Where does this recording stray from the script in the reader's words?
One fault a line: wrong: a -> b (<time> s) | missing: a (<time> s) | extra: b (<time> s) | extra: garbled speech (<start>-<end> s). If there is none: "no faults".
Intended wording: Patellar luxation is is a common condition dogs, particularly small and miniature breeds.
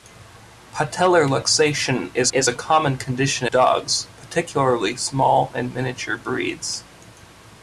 no faults